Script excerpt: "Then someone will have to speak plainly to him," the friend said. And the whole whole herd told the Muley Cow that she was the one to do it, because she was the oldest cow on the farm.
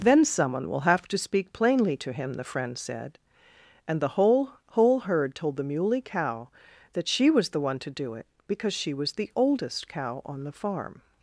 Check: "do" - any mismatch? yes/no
no